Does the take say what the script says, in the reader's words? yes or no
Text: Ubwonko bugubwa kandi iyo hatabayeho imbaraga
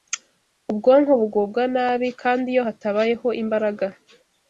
no